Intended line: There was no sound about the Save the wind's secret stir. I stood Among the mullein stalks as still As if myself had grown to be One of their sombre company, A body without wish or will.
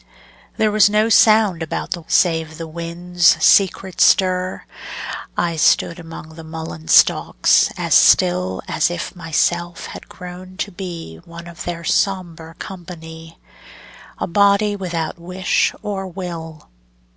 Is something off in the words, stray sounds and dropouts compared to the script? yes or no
no